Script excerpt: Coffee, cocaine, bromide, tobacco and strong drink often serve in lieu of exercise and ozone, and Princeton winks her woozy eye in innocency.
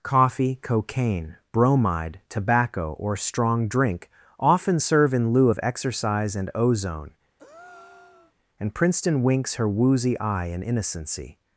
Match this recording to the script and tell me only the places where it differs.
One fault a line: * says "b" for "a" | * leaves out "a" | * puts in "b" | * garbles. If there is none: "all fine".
* says "or" for "and"